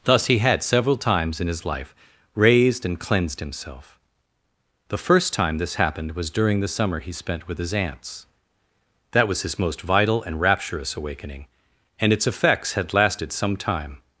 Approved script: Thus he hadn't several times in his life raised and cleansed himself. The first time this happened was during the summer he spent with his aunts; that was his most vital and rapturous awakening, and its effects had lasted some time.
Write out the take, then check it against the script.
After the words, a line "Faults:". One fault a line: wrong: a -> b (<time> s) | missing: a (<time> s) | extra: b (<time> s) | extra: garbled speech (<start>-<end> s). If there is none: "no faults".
Thus he had several times in his life raised and cleansed himself. The first time this happened was during the summer he spent with his aunts; that was his most vital and rapturous awakening, and its effects had lasted some time.
Faults:
wrong: hadn't -> had (0.4 s)